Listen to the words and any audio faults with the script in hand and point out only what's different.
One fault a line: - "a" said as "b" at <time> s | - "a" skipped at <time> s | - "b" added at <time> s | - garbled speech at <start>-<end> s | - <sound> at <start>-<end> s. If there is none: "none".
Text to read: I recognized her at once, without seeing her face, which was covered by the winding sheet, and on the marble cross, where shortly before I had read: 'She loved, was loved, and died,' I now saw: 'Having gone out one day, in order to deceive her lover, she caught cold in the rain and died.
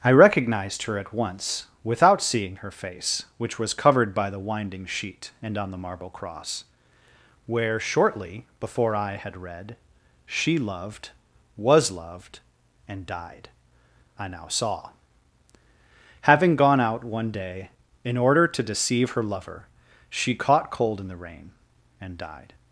none